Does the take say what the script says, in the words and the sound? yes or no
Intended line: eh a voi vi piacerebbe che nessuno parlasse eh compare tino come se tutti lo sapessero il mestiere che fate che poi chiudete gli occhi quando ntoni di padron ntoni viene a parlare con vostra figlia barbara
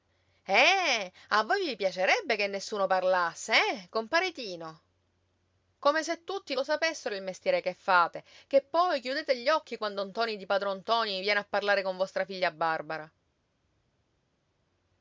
yes